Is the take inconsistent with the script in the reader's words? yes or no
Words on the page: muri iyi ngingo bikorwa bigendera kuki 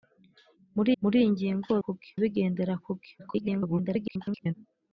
yes